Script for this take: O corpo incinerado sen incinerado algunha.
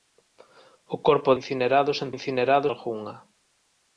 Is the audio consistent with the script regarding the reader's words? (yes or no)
yes